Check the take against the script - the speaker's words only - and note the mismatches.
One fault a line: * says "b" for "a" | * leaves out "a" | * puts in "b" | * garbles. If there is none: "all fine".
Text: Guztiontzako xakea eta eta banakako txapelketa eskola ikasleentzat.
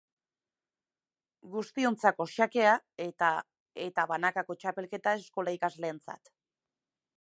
all fine